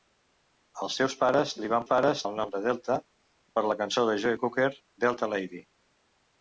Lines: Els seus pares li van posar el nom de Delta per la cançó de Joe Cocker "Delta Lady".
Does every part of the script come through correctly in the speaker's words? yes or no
no